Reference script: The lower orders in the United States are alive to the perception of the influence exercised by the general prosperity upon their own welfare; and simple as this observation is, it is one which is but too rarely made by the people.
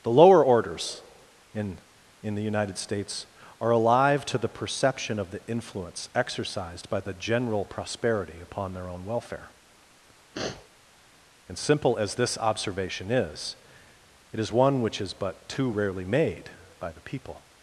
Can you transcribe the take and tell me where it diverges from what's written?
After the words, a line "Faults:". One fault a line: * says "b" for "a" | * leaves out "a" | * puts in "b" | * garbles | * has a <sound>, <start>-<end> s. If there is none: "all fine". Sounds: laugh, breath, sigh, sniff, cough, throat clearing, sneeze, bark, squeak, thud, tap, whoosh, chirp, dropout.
The lower orders in in the United States are alive to the perception of the influence exercised by the general prosperity upon their own welfare; and simple as this observation is, it is one which is but too rarely made by the people.
Faults:
* puts in "in"
* has a sniff, 10.3-10.7 s